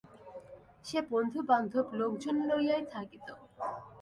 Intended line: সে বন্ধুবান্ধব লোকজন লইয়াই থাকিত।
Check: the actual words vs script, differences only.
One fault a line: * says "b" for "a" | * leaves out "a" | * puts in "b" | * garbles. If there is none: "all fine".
all fine